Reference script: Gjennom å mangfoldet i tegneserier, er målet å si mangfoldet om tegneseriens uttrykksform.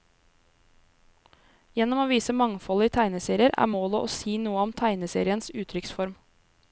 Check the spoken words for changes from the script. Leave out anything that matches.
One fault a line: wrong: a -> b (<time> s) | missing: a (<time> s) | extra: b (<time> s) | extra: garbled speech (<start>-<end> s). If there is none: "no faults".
extra: vise (2.1 s)
wrong: mangfoldet -> noe (4.4 s)